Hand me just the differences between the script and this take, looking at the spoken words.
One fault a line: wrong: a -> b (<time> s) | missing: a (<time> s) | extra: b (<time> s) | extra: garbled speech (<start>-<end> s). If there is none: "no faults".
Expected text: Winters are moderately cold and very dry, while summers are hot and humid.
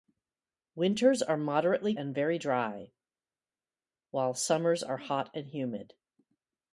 missing: cold (1.9 s)